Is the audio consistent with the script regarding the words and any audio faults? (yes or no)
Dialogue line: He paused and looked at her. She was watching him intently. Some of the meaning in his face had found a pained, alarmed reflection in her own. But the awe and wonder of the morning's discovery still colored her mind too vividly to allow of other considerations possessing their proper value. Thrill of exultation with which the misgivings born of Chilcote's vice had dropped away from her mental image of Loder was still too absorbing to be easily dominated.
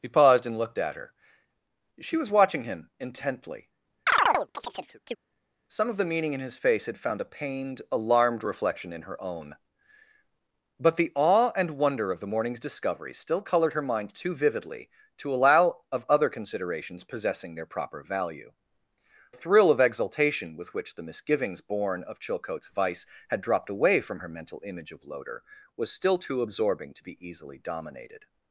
no